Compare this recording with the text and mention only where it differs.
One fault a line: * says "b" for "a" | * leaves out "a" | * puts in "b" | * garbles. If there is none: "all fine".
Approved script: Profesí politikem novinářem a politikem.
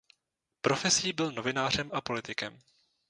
* says "byl" for "politikem"